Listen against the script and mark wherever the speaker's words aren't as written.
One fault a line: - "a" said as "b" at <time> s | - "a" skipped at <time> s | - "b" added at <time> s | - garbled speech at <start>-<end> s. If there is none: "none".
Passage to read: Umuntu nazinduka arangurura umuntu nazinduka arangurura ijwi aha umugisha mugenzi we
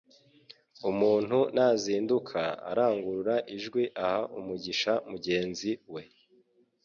- "umuntu nazinduka arangurura" skipped at 3.3 s